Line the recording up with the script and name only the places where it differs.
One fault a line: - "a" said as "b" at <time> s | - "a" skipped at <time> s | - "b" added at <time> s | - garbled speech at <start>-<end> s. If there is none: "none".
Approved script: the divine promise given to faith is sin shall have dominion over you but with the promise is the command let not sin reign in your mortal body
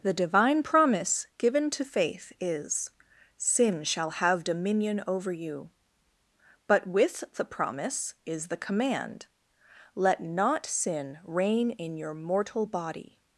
none